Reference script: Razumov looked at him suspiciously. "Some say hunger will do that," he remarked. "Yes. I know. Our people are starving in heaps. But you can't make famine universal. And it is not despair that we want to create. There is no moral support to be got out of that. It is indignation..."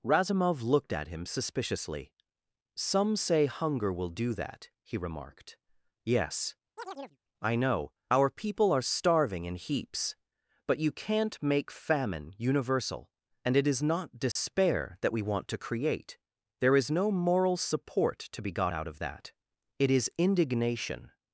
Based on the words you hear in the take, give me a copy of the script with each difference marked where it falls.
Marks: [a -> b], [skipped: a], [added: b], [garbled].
Razumov looked at him suspiciously. "Some say hunger will do that," he remarked. "Yes. I know. Our people are starving in heaps. But you can't make famine universal. And it is not despair that we want to create. There is no moral support to be got out of that. It is indignation..."